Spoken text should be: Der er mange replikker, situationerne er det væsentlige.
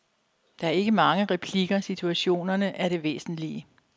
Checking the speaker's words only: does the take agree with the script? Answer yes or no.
no